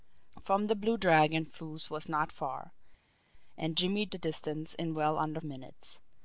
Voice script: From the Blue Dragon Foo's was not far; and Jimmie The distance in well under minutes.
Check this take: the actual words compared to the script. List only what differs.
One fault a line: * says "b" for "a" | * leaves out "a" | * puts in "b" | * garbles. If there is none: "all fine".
all fine